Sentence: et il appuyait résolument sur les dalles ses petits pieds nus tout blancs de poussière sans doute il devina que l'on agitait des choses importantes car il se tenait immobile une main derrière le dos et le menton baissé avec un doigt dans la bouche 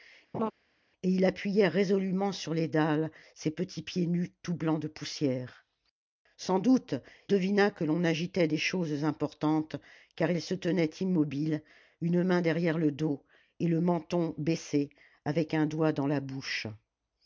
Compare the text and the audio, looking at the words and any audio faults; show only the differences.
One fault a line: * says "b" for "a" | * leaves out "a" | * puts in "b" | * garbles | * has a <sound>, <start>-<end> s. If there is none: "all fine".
* has a laugh, 0.3-0.5 s
* leaves out "il"